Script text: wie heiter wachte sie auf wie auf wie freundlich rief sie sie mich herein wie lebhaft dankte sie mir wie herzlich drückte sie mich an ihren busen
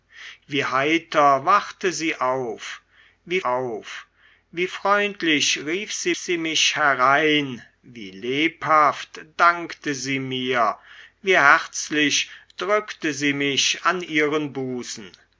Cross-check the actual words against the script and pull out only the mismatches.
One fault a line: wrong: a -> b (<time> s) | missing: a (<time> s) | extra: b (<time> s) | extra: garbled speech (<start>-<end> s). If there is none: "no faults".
no faults